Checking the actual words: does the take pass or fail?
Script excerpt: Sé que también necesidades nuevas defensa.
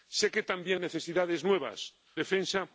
pass